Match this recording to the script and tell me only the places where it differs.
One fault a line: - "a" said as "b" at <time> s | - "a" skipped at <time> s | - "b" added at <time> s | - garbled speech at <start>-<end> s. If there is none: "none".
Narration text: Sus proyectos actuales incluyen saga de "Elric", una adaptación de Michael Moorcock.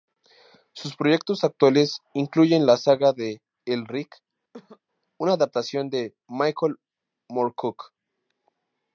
- "la" added at 2.6 s